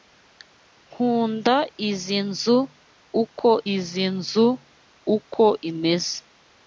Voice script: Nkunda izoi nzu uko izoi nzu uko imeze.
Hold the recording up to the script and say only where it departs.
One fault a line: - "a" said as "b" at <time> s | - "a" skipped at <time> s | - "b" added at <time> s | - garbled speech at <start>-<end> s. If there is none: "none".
none